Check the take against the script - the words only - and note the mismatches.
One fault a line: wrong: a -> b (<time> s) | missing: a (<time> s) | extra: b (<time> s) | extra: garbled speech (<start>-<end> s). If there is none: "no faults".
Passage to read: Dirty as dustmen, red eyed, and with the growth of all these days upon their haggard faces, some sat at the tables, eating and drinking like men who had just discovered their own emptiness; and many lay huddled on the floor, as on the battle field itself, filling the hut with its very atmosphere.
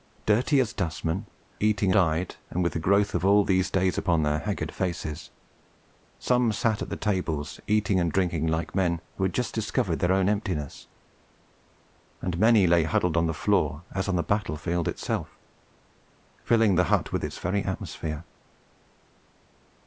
wrong: red -> eating (1.6 s)